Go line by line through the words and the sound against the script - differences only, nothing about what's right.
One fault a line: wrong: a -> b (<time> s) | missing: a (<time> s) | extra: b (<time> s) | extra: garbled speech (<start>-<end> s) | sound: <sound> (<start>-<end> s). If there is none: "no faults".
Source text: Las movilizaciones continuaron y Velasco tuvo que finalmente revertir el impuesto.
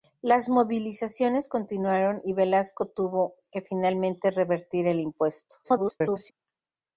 extra: garbled speech (5.6-6.3 s)